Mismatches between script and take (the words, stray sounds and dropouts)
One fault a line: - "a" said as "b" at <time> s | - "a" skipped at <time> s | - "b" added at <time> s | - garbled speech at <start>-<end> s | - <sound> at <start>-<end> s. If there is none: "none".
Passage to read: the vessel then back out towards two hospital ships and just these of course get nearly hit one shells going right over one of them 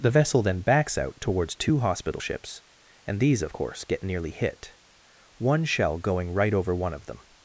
- "back" said as "backs" at 0.6 s
- "just" skipped at 3.2 s
- "shells" said as "shell" at 5.6 s